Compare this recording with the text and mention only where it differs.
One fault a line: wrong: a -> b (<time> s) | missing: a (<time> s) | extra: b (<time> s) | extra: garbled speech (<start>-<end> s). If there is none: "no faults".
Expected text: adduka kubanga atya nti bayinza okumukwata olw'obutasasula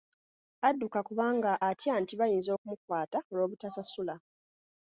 no faults